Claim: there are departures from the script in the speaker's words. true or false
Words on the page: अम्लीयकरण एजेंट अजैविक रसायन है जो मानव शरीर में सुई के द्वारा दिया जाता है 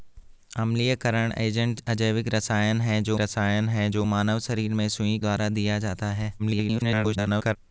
true